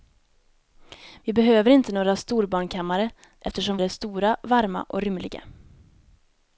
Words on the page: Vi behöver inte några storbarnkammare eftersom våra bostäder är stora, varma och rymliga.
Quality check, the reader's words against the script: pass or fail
fail